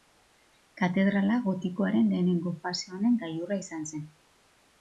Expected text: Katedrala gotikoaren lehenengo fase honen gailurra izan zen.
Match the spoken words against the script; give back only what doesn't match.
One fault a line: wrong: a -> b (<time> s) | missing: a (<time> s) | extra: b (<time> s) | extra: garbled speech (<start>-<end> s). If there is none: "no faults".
no faults